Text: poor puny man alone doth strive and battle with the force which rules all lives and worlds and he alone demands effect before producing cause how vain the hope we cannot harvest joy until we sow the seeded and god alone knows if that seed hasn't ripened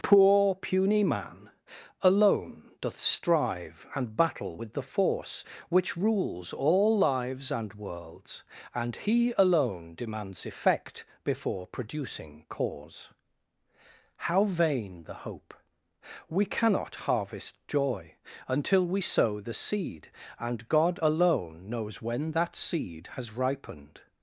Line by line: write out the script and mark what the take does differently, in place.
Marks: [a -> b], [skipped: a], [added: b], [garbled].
poor puny man alone doth strive and battle with the force which rules all lives and worlds and he alone demands effect before producing cause how vain the hope we cannot harvest joy until we sow the [seeded -> seed] and god alone knows [if -> when] that seed [hasn't -> has] ripened